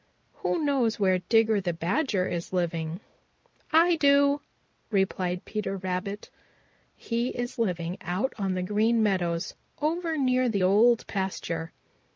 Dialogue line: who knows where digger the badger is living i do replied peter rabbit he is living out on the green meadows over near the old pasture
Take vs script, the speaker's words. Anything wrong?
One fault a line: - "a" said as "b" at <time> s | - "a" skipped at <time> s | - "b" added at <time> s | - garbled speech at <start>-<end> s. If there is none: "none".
none